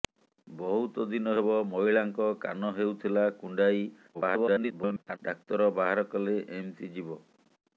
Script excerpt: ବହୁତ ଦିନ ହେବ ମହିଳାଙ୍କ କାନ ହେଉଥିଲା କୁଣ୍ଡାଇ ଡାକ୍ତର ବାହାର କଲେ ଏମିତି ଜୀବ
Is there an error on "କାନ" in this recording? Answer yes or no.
no